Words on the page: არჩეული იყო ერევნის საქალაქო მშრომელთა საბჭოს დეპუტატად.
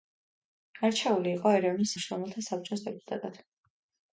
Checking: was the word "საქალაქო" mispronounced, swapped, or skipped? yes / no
yes